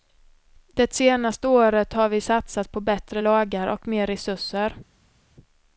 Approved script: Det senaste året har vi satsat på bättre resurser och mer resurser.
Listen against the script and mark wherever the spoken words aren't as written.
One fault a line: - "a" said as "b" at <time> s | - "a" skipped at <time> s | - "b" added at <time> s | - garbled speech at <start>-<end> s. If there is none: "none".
- "resurser" said as "lagar" at 3.2 s